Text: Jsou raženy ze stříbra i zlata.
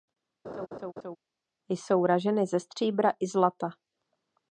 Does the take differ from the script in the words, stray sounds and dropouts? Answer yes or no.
yes